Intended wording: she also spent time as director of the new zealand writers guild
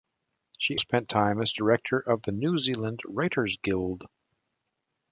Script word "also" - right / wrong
wrong